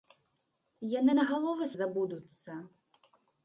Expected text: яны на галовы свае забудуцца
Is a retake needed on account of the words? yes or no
yes